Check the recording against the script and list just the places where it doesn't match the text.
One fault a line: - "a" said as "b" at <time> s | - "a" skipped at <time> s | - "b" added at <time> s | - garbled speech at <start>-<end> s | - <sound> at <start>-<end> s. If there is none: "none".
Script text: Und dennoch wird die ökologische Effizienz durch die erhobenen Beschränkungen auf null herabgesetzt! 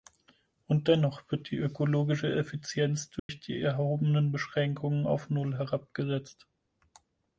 - dropout at 3.2-3.3 s